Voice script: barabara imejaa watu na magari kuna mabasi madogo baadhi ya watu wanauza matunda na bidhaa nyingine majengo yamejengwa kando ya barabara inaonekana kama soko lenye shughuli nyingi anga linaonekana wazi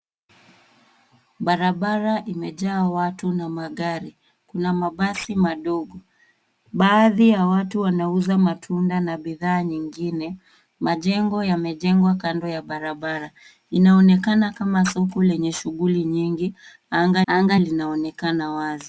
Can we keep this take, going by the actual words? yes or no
no